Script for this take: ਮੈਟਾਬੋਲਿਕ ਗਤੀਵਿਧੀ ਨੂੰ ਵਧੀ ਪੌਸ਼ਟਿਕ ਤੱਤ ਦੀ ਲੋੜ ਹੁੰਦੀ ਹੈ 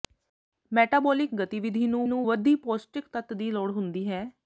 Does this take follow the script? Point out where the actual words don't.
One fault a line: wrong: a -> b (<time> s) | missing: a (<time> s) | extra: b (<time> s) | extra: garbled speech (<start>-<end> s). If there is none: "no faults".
extra: ਨੂੰ (2.1 s)